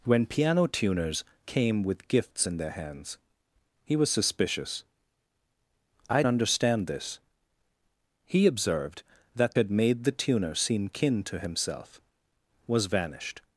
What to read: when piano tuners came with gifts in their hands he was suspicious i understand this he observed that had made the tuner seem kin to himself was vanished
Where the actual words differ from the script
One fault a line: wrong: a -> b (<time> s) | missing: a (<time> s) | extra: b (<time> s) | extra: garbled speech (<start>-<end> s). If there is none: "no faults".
no faults